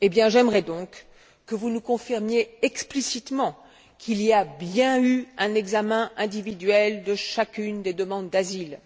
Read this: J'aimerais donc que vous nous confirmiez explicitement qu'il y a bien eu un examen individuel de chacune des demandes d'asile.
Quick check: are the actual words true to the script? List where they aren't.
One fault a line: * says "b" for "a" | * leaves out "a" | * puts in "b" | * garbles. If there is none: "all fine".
all fine